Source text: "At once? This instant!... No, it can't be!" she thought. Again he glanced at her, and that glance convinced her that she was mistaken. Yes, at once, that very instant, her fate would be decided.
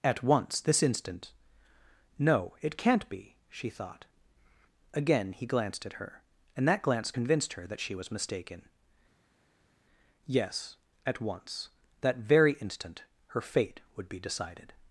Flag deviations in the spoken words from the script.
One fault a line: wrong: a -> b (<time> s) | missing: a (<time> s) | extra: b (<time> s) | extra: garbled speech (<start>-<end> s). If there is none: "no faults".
no faults